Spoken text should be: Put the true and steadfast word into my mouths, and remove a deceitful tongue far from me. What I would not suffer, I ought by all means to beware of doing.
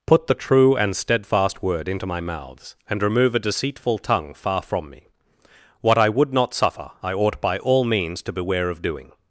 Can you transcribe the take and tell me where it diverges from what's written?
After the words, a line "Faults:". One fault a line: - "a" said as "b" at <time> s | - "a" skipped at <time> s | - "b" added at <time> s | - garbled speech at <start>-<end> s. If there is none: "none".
Put the true and steadfast word into my mouths, and remove a deceitful tongue far from me. What I would not suffer, I ought by all means to beware of doing.
Faults:
none